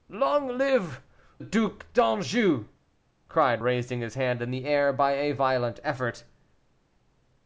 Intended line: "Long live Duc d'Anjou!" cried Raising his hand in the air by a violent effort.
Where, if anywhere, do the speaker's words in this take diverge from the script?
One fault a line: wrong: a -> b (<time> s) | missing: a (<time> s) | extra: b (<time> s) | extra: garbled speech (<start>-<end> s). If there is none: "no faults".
no faults